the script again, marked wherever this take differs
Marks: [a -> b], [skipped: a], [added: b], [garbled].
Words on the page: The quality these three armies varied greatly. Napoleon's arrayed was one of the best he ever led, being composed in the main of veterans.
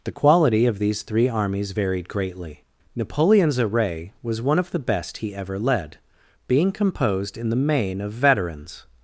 The quality [added: of] these three armies varied greatly. Napoleon's [arrayed -> array] was one of the best he ever led, being composed in the main of veterans.